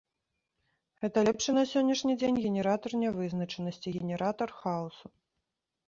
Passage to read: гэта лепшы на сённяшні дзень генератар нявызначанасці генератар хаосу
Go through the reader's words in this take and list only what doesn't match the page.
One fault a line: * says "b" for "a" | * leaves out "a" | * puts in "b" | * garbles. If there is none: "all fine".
all fine